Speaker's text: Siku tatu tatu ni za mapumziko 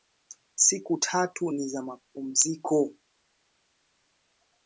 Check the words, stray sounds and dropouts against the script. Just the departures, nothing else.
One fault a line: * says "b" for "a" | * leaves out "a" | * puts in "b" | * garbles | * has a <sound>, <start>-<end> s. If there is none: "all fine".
* leaves out "tatu"